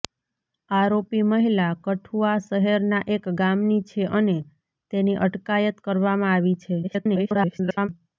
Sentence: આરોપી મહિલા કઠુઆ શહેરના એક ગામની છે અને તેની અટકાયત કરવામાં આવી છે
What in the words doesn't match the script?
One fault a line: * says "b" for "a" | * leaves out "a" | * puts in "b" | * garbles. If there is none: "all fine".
* garbles